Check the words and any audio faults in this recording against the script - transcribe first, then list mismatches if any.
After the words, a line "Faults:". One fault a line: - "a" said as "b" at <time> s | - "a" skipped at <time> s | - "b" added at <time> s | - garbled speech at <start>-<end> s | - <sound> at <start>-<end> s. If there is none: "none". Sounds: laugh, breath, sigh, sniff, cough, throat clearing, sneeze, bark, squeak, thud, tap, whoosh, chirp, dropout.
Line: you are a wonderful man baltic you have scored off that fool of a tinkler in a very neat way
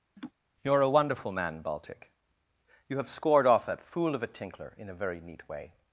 you are a wonderful man baltic you have scored off that fool of a tinkler in a very neat way
Faults:
- laugh at 0.2-0.3 s